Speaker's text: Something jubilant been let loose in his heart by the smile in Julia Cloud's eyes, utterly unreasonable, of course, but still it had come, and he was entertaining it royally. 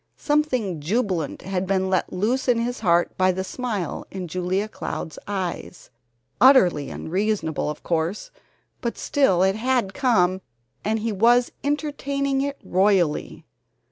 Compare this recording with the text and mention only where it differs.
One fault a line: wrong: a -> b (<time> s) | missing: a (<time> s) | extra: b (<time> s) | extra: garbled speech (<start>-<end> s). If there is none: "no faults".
extra: had (1.4 s)